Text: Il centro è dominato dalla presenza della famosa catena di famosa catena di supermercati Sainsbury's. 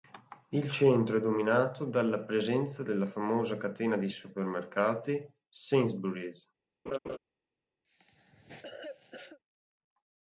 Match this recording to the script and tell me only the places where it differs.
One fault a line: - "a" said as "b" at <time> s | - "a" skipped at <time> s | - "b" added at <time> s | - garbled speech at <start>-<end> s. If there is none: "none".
- "famosa catena di" skipped at 4.1 s